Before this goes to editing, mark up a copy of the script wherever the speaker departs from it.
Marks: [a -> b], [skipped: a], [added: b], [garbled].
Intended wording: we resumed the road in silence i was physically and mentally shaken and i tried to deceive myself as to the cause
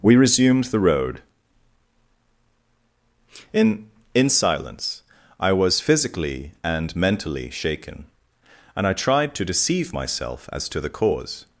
we resumed the road in [added: in] silence i was physically and mentally shaken and i tried to deceive myself as to the cause